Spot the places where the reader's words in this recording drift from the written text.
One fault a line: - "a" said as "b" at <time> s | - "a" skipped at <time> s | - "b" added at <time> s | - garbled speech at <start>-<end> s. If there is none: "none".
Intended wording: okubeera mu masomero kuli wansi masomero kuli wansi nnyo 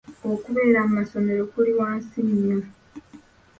- "masomero kuli wansi" skipped at 2.2 s